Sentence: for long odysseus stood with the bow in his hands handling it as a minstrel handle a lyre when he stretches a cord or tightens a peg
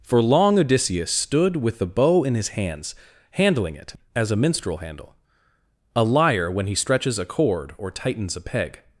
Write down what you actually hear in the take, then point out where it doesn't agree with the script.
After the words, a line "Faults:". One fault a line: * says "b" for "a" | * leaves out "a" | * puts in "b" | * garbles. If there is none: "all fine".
for long odysseus stood with the bow in his hands handling it as a minstrel handle a lyre when he stretches a cord or tightens a peg
Faults:
all fine